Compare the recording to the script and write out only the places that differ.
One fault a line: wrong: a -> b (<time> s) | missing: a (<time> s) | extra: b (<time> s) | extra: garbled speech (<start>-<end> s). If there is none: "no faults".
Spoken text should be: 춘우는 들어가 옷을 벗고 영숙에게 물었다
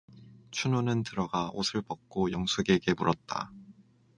no faults